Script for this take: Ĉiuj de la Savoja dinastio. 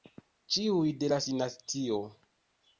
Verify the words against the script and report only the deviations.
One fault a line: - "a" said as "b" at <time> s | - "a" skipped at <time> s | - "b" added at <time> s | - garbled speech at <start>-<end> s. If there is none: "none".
- "Savoja" skipped at 1.2 s